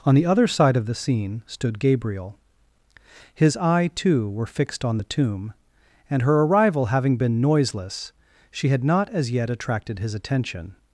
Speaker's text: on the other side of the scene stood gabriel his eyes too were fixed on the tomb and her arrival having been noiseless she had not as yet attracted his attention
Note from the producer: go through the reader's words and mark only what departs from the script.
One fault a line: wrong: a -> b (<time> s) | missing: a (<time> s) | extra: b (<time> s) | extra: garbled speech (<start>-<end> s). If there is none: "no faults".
wrong: eyes -> eye (3.6 s)